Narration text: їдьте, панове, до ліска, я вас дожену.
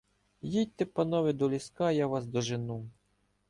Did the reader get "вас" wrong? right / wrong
right